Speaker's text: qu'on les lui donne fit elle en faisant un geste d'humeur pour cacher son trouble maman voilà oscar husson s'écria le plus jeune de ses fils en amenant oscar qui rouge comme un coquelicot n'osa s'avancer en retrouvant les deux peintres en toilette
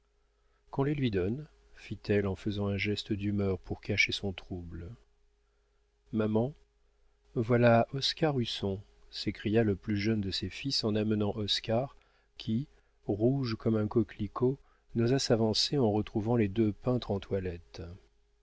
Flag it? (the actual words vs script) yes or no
no